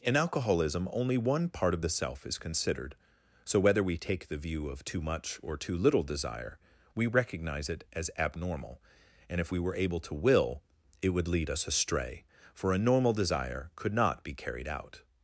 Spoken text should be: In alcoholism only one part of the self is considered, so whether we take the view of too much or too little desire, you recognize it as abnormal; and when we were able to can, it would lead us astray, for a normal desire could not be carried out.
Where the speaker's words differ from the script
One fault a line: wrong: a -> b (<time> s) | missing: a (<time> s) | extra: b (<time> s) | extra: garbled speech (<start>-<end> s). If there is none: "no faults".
wrong: you -> we (7.0 s)
wrong: when -> if (9.4 s)
wrong: can -> will (10.1 s)